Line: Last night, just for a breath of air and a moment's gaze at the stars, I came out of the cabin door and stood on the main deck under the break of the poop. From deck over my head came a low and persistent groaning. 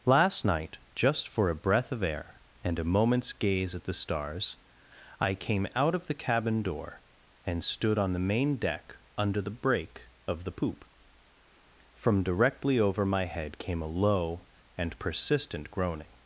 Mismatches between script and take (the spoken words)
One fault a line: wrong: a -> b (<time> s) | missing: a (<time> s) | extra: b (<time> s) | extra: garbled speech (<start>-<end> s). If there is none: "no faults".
wrong: deck -> directly (12.2 s)